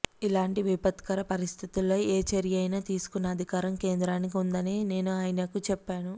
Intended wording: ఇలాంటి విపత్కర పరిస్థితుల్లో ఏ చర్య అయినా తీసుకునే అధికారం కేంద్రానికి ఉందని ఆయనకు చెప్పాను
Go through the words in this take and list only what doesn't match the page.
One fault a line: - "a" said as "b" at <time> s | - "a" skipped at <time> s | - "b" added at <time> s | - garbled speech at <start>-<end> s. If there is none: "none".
- "నేను" added at 4.9 s